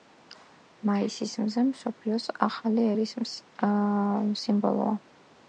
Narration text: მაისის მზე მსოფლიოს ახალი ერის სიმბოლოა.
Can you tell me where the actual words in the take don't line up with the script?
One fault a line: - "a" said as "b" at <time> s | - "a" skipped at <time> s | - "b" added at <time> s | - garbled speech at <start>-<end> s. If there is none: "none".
none